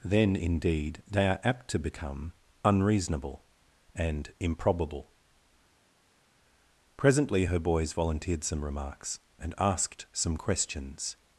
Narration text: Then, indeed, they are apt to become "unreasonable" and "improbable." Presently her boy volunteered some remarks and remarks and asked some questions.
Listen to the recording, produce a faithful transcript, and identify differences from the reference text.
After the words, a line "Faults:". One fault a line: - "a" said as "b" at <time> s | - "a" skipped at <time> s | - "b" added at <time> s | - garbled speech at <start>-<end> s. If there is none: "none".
Then, indeed, they are apt to become "unreasonable" and "improbable." Presently her boys volunteered some remarks and asked some questions.
Faults:
- "boy" said as "boys" at 7.6 s
- "remarks and" skipped at 9.5 s